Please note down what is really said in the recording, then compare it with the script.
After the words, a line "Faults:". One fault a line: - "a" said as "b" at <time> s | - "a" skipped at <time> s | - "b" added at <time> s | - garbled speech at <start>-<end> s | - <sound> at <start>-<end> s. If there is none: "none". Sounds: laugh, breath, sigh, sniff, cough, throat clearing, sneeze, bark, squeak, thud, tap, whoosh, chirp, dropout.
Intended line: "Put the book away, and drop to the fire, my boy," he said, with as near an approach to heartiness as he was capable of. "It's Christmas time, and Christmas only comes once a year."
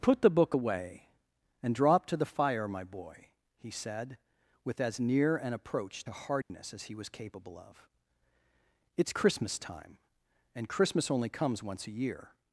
"Put the book away, and drop to the fire, my boy," he said, with as near an approach to heartiness as he was capable of. "It's Christmas time, and Christmas only comes once a year."
Faults:
- dropout at 6.4-6.5 s